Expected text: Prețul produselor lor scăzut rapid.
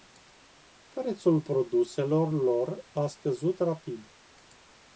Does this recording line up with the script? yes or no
no